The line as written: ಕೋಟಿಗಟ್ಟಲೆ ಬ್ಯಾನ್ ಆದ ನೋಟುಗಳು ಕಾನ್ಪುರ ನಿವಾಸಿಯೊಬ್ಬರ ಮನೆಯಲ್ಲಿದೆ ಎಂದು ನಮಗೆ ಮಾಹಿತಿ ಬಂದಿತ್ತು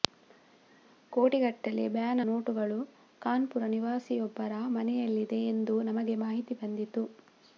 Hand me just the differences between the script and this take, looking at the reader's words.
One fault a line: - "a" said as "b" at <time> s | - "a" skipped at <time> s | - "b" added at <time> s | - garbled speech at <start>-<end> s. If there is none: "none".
- "ಆದ" skipped at 2.2 s